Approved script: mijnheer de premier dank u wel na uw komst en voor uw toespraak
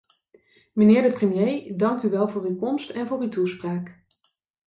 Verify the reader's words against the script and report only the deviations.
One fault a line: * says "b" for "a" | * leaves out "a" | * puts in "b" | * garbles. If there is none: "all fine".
* says "voor" for "na"